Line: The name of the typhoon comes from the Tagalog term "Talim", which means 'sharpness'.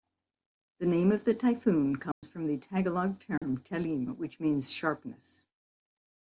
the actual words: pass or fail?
pass